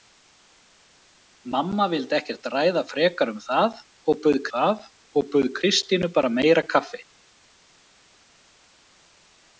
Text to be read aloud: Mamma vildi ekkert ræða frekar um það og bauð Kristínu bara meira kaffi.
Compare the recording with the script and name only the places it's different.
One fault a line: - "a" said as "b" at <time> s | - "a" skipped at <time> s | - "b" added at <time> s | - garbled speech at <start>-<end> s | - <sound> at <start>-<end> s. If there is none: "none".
- "það og bauð" added at 4.5 s